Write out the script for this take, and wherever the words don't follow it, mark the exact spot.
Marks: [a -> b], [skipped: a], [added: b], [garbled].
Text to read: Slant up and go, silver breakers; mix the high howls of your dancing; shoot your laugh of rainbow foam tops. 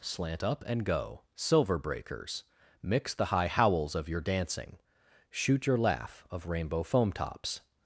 Slant up and go, silver breakers; mix the high howls of your dancing; shoot your laugh of rainbow foam tops.